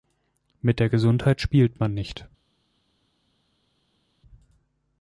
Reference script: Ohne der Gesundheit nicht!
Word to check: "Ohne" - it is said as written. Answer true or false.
false